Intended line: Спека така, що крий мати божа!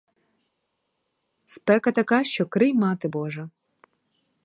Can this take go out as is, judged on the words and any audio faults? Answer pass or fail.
pass